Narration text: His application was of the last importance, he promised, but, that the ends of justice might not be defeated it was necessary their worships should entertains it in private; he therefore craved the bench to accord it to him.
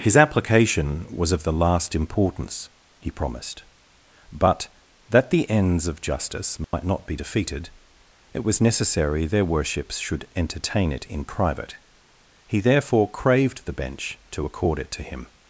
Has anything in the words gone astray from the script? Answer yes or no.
yes